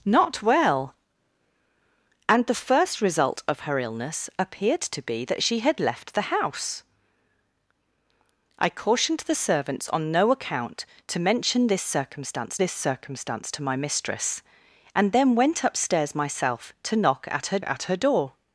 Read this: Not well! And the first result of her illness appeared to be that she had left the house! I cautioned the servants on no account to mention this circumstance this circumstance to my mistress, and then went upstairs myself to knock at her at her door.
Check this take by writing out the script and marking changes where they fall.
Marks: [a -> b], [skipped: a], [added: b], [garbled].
Not well! And the first result of her illness appeared to be that she had left the house! I cautioned the servants on no account to mention this circumstance this circumstance to my mistress, and then went upstairs myself to knock at her at her door.